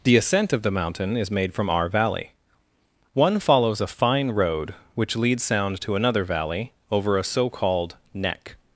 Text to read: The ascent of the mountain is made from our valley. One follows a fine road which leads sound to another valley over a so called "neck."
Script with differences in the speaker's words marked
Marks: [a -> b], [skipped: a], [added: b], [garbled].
The ascent of the mountain is made from our valley. One follows a fine road which leads sound to another valley over a so called "neck."